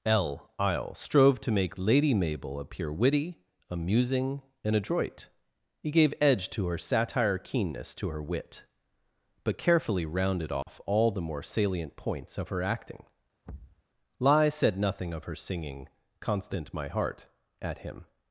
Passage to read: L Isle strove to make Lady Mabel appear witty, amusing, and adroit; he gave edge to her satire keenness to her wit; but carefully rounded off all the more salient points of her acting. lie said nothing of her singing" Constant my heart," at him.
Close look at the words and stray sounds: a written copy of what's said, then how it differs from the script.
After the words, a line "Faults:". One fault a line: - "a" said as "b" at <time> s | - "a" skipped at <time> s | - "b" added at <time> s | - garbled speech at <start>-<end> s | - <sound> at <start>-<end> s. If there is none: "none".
L Isle strove to make Lady Mabel appear witty, amusing, and adroit; he gave edge to her satire keenness to her wit; but carefully rounded off all the more salient points of her acting. lie said nothing of her singing" Constant my heart," at him.
Faults:
- dropout at 10.6-10.7 s
- thud at 13.4-13.8 s